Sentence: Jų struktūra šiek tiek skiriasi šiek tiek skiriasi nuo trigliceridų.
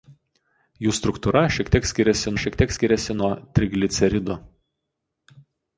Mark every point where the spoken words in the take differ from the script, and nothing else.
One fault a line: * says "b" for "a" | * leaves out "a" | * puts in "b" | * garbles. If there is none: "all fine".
all fine